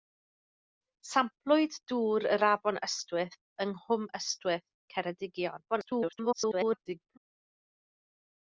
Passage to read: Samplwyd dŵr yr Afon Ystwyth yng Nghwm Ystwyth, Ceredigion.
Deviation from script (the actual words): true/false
true